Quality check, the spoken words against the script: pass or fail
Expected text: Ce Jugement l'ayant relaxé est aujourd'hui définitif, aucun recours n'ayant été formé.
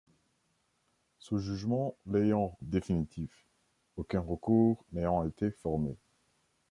fail